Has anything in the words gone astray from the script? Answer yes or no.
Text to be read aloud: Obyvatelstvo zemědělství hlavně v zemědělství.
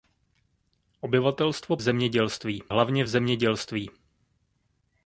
no